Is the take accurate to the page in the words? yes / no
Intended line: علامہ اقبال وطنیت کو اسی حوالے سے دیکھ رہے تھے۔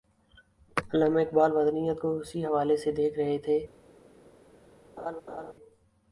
yes